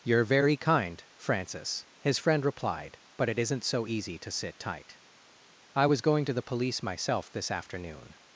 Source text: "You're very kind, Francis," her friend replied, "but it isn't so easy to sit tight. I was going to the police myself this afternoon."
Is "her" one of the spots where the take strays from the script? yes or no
yes